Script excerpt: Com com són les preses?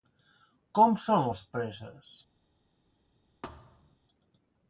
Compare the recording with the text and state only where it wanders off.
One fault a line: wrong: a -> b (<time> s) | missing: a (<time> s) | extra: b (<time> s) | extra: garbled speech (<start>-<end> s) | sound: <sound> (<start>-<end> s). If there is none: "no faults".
missing: com (1.0 s)
sound: thud (3.4-4.0 s)